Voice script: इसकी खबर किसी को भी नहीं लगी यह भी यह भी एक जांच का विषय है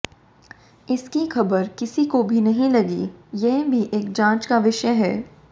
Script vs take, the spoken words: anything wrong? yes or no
yes